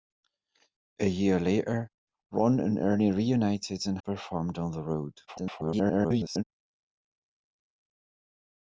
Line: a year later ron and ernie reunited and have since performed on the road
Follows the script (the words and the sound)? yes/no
no